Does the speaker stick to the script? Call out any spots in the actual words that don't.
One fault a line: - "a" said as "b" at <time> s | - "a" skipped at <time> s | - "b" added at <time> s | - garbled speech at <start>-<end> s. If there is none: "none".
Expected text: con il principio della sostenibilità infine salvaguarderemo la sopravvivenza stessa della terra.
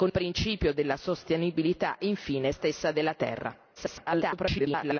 - "il" skipped at 0.1 s
- "salvaguarderemo la sopravvivenza" skipped at 2.5 s
- garbled speech at 3.8-5.0 s